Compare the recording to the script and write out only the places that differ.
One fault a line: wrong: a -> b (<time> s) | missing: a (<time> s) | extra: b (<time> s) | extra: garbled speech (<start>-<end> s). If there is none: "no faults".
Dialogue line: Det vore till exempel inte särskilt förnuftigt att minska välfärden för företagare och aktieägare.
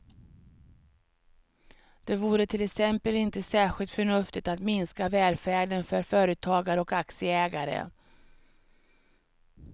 no faults